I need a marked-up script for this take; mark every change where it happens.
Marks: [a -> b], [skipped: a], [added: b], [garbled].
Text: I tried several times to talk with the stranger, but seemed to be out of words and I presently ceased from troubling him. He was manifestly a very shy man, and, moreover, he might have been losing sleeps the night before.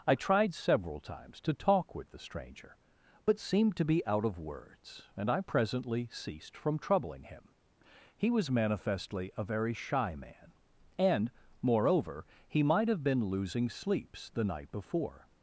I tried several times to talk with the stranger, but seemed to be out of words and I presently ceased from troubling him. He was manifestly a very shy man, and, moreover, he might have been losing sleeps the night before.